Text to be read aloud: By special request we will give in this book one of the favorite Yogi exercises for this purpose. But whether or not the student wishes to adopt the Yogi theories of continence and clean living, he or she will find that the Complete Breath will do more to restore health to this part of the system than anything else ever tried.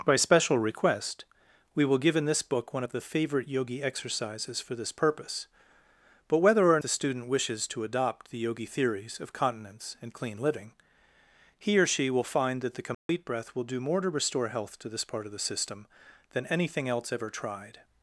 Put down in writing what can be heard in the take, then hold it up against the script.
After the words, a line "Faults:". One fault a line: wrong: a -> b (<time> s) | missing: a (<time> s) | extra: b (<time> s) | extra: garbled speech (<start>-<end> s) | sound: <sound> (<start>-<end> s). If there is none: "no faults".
By special request we will give in this book one of the favorite Yogi exercises for this purpose. But whether or the student wishes to adopt the Yogi theories of continence and clean living, he or she will find that the Complete Breath will do more to restore health to this part of the system than anything else ever tried.
Faults:
missing: not (6.8 s)
sound: dropout (12.9-13.1 s)